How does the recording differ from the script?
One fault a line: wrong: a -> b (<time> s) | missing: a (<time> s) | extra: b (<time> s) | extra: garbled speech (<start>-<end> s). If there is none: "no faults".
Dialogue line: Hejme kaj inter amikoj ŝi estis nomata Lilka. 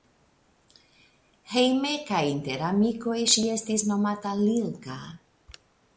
no faults